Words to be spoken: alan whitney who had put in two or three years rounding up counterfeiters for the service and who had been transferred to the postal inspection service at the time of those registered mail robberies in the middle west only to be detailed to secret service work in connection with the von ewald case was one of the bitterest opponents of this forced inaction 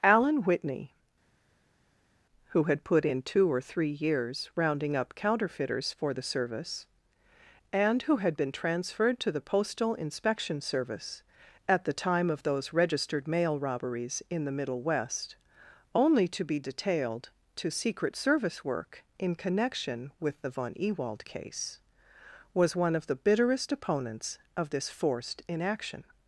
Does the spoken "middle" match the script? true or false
true